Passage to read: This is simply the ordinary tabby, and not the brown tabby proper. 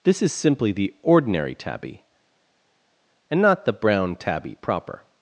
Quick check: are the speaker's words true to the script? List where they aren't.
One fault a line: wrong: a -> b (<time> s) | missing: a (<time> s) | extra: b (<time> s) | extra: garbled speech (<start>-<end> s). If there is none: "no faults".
no faults